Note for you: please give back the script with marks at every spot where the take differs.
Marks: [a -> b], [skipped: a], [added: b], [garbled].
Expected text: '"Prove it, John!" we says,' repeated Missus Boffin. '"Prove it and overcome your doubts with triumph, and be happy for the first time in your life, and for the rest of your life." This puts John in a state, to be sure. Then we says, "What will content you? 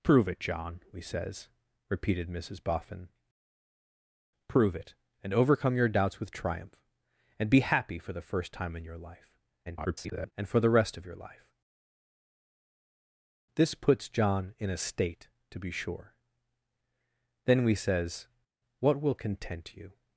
'"Prove it, John!" we says,' repeated Missus Boffin. '"Prove it and overcome your doubts with triumph, and be happy for the first time in your life, [garbled] and for the rest of your life." This puts John in a state, to be sure. Then we says, "What will content you?